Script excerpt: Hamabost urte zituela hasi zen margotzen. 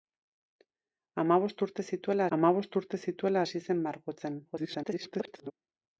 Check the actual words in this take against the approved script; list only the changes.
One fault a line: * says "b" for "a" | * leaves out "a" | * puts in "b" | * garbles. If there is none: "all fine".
* puts in "hamabost urte zituela"
* garbles